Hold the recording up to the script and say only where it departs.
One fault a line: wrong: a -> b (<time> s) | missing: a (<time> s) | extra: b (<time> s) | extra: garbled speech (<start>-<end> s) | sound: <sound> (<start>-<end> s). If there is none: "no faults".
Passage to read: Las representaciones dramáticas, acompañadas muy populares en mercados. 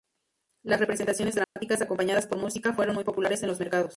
sound: dropout (1.4-1.6 s)
extra: por música fueron (2.3 s)
extra: los (3.5 s)